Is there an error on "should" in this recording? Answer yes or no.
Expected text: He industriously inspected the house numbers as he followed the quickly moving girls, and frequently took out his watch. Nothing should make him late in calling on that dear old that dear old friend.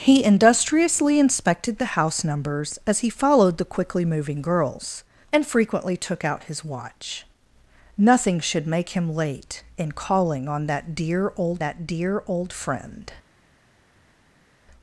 no